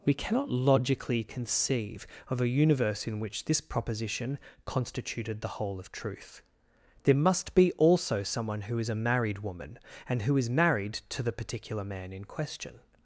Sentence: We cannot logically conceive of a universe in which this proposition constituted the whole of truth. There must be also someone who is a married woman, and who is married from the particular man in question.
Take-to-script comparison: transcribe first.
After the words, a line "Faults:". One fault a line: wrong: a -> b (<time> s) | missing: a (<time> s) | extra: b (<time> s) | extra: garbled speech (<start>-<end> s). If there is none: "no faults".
We cannot logically conceive of a universe in which this proposition constituted the whole of truth. There must be also someone who is a married woman, and who is married to the particular man in question.
Faults:
wrong: from -> to (11.1 s)